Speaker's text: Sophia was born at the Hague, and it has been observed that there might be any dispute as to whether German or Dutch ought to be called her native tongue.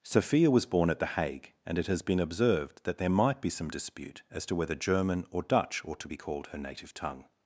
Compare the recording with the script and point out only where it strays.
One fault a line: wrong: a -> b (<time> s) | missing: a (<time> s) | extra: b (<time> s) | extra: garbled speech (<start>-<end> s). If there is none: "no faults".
wrong: any -> some (3.5 s)